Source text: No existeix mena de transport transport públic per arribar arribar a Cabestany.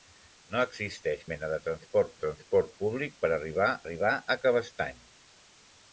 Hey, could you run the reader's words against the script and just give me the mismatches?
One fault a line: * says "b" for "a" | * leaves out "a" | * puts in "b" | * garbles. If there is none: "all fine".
all fine